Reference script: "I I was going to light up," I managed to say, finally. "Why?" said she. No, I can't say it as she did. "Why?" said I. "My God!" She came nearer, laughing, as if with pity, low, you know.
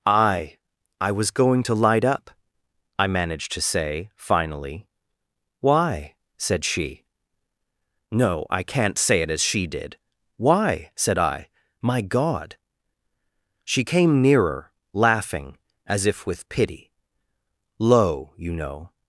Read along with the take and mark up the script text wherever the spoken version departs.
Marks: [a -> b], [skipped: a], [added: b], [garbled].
"I I was going to light up," I managed to say, finally. "Why?" said she. No, I can't say it as she did. "Why?" said I. "My God!" She came nearer, laughing, as if with pity, low, you know.